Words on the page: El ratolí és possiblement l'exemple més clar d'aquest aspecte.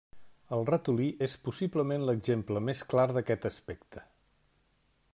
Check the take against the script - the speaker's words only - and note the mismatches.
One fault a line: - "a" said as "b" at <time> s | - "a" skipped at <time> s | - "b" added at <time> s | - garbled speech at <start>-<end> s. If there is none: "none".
none